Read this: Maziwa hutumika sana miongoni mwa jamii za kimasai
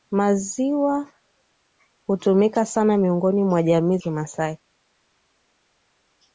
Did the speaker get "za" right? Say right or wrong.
wrong